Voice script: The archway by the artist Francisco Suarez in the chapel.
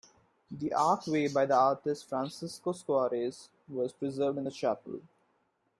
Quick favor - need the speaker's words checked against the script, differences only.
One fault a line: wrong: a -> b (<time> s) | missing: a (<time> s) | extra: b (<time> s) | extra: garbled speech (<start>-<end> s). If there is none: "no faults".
extra: was preserved (3.7 s)